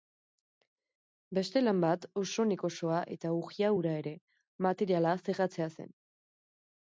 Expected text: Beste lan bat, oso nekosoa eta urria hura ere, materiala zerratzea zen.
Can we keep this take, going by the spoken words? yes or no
yes